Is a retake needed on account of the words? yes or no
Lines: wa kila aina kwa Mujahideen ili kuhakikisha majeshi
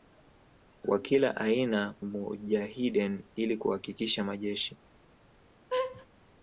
yes